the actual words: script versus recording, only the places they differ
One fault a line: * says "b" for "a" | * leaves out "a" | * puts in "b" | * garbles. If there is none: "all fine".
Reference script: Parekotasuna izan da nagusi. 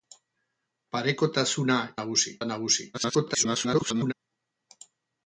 * says "nagusi" for "izan"
* garbles